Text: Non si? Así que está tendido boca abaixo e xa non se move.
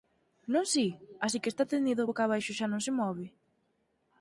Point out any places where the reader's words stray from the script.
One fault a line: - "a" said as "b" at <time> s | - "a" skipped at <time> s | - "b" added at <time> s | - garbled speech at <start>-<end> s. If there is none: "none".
none